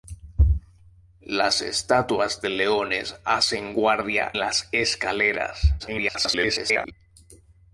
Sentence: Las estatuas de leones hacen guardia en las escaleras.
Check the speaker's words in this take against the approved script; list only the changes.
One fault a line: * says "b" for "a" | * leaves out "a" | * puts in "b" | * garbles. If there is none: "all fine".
* leaves out "en"
* garbles